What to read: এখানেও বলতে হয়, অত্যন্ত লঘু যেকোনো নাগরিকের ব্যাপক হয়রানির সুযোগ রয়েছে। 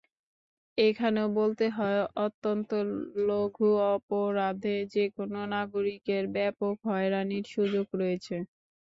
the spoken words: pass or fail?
fail